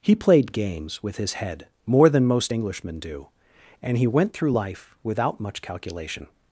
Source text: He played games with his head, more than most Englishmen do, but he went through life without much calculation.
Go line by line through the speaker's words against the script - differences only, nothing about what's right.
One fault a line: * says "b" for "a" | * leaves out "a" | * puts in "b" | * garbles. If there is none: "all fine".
* says "and" for "but"